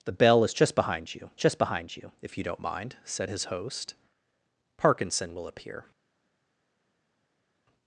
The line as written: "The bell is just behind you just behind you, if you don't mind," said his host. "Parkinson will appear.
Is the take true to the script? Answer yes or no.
yes